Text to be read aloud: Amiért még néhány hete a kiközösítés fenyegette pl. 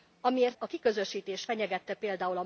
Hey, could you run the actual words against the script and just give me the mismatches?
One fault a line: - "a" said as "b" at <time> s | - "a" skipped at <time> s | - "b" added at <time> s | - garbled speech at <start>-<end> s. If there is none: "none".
- "még néhány hete" skipped at 0.6 s